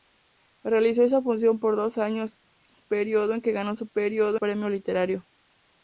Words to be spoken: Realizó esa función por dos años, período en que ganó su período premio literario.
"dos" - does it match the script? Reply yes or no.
yes